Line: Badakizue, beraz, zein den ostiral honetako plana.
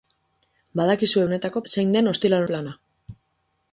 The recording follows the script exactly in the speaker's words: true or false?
false